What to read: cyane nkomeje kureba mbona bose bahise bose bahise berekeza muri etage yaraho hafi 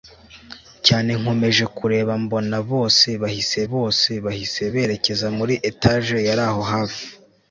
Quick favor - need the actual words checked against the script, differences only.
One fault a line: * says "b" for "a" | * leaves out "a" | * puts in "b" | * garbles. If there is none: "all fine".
all fine